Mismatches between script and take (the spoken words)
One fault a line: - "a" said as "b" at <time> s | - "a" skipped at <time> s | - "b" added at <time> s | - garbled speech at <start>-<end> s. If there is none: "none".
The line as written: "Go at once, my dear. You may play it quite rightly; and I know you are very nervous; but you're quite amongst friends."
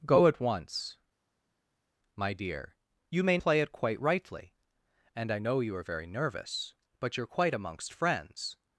none